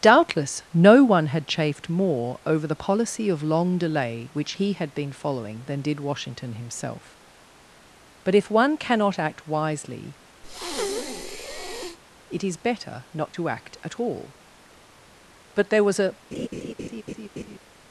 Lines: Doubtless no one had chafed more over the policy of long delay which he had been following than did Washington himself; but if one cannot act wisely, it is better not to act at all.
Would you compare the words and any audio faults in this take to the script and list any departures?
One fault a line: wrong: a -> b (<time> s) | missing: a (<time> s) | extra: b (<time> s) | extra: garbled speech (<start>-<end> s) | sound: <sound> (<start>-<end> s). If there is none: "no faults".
sound: breath (10.4-12.0 s)
extra: But there was a (15.5 s)
sound: laugh (16.3-17.6 s)